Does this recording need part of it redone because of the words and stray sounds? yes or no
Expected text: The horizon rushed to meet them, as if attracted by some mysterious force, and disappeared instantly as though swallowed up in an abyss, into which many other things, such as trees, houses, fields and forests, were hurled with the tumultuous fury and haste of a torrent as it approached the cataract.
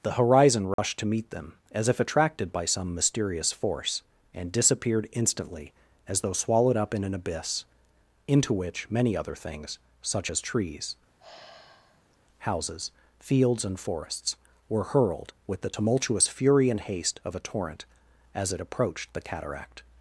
yes